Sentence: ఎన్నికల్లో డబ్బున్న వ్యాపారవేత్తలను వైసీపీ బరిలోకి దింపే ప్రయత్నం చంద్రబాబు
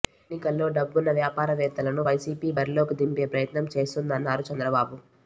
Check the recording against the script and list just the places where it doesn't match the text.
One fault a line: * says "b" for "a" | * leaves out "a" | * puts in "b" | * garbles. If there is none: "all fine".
* puts in "చేస్తోందన్నారు"